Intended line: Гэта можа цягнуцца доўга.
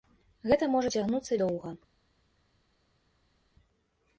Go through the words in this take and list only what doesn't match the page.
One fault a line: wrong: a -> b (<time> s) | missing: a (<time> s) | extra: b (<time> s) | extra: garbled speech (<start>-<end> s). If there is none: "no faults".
no faults